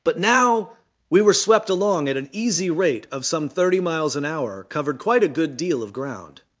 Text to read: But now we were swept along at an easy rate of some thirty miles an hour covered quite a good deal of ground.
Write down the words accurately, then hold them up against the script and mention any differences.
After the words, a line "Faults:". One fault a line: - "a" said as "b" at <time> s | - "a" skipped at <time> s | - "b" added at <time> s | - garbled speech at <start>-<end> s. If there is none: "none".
But now we were swept along at an easy rate of some thirty miles an hour covered quite a good deal of ground.
Faults:
none